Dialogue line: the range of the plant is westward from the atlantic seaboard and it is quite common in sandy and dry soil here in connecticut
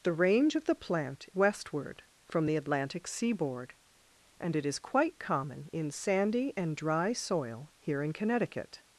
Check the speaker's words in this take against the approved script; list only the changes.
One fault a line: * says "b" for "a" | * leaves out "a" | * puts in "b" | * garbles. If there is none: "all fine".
* leaves out "is"